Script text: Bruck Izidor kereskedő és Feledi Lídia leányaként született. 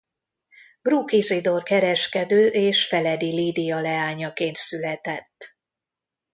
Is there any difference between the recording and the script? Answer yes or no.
no